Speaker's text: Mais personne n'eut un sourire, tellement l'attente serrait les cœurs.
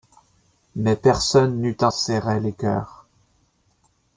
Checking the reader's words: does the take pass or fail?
fail